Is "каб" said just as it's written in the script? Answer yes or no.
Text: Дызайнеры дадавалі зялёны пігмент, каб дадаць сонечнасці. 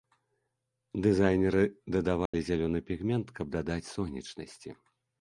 yes